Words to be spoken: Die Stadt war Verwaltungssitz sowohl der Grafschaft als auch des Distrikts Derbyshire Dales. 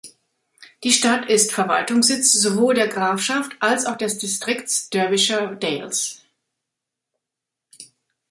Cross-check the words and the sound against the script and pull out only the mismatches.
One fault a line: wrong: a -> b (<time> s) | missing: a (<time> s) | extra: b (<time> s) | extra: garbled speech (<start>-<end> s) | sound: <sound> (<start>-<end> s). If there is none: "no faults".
wrong: war -> ist (1.3 s)